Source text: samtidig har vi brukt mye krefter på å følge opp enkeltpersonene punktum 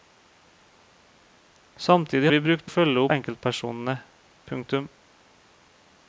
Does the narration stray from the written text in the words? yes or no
yes